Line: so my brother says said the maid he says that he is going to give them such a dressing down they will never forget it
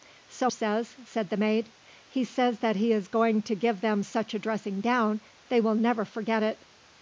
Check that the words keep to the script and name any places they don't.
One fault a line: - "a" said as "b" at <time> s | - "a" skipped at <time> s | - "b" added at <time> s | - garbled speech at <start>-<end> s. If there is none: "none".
- "my brother" skipped at 0.5 s